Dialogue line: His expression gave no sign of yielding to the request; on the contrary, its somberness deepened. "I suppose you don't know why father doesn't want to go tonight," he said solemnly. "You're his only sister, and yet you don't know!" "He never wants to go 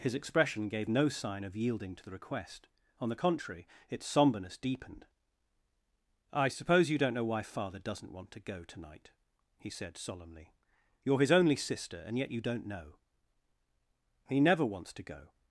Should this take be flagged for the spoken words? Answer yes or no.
no